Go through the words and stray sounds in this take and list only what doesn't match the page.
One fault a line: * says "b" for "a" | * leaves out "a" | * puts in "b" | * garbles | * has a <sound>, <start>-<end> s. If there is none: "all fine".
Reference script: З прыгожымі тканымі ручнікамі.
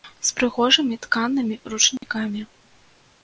* has a dropout, 2.0-2.0 s